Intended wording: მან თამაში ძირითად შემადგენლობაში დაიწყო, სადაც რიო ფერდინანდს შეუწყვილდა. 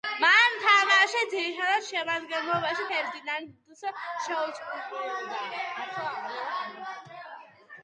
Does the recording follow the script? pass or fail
fail